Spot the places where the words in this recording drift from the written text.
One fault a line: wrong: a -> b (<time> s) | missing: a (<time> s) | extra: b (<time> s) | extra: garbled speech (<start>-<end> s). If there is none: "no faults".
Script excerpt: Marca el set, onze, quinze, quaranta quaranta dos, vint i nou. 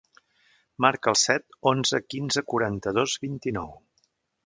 missing: quaranta (3.0 s)